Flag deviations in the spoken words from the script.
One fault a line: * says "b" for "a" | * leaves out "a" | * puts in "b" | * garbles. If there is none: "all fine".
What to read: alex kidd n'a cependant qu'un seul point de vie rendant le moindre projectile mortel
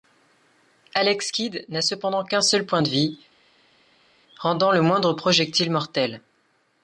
all fine